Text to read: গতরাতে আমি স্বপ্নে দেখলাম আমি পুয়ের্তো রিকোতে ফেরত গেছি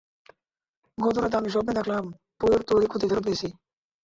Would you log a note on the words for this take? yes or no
yes